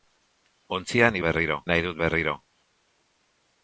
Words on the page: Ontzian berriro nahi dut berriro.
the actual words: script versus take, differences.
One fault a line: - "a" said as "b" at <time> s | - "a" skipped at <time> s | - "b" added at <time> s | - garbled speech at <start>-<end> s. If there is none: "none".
none